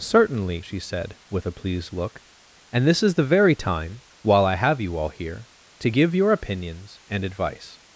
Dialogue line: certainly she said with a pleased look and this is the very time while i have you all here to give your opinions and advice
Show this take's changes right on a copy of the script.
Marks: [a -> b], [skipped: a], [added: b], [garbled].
certainly she said with a pleased look and this is the very time while i have you all here to give your opinions and advice